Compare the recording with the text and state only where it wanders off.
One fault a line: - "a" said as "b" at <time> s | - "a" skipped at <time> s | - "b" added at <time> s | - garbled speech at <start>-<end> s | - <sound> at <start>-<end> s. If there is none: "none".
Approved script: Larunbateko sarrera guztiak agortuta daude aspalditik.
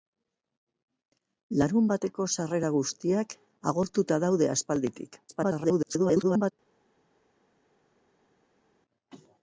- garbled speech at 5.3-6.5 s